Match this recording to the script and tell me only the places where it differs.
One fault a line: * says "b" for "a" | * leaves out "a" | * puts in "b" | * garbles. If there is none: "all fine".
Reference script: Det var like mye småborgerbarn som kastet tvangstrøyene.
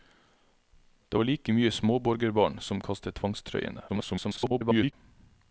* garbles